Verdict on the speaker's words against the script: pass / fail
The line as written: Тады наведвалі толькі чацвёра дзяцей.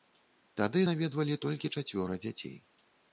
pass